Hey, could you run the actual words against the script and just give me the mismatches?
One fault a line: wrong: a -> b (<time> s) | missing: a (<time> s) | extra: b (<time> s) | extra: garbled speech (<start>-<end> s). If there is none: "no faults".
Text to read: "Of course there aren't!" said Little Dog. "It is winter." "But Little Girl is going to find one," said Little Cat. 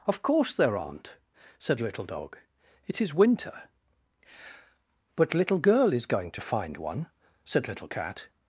no faults